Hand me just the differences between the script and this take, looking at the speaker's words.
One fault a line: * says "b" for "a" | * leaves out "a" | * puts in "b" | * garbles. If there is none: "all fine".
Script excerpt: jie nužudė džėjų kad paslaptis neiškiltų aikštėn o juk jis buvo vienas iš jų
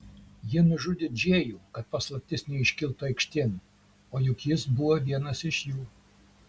all fine